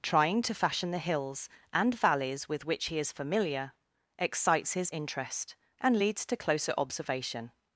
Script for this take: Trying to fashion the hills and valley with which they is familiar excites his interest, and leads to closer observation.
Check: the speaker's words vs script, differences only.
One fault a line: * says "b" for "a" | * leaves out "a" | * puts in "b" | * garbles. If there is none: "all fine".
* says "valleys" for "valley"
* says "he" for "they"